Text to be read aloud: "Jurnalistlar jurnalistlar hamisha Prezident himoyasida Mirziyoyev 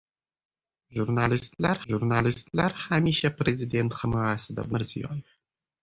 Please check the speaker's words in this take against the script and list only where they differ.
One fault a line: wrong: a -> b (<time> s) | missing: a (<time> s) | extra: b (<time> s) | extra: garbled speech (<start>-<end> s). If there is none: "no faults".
no faults